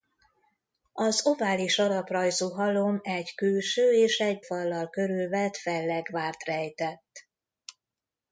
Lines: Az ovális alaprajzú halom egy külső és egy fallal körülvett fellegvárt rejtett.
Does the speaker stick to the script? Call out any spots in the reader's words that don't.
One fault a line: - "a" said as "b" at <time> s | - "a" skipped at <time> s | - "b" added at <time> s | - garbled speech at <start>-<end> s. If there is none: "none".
none